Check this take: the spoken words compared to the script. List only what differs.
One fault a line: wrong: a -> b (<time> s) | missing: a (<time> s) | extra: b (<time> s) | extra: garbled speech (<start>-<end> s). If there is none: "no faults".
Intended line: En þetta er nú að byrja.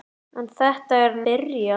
missing: nú að (1.2 s)